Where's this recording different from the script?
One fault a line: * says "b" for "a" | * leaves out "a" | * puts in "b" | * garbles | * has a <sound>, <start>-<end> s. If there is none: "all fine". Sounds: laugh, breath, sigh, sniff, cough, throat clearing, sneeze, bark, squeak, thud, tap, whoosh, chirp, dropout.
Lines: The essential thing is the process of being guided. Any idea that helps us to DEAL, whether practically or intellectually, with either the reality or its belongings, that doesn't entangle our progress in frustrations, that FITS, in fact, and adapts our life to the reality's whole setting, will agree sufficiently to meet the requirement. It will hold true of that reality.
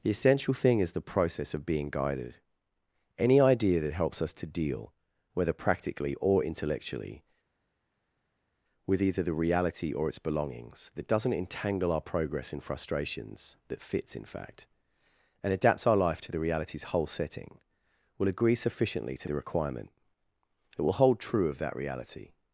* leaves out "meet"